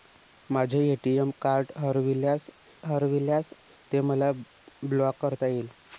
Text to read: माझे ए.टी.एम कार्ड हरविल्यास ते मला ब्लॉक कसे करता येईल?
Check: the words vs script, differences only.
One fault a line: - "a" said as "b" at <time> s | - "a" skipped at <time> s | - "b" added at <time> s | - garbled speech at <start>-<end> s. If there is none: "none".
- "हरविल्यास" added at 2.9 s
- "कसे" skipped at 5.2 s